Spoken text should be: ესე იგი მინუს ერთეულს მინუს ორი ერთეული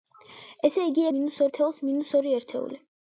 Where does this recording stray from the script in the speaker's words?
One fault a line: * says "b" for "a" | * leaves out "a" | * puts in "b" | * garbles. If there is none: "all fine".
all fine